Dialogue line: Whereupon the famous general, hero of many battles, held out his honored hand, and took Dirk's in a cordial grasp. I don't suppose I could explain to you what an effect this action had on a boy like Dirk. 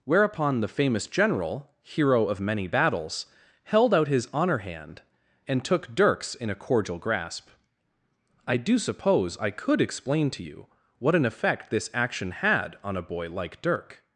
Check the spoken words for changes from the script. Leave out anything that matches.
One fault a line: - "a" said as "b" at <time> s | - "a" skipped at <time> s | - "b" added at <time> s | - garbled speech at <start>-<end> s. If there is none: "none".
- "honored" said as "honor" at 4.3 s
- "don't" said as "do" at 8.6 s